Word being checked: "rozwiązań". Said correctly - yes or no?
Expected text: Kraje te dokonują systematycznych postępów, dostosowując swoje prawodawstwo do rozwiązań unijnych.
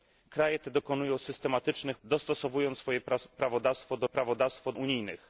no